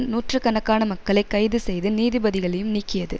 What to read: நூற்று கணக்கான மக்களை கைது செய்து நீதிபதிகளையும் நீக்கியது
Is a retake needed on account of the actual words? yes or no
no